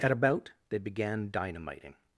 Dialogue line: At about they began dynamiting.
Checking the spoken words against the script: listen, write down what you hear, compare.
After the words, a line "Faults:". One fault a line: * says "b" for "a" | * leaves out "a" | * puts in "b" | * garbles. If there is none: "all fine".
At about they began dynamiting.
Faults:
all fine